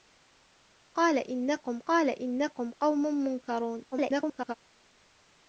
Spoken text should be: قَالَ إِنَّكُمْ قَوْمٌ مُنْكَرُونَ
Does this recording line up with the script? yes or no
no